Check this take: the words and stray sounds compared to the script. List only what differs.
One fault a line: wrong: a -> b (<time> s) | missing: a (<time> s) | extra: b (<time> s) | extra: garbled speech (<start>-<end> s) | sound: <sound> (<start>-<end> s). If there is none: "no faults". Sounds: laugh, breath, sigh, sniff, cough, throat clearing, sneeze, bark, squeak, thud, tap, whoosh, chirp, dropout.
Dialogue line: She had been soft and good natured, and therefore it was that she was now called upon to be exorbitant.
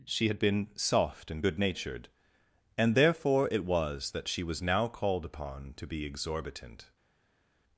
no faults